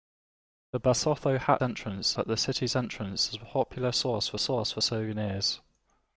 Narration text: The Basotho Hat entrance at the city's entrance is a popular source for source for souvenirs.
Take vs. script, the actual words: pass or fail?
pass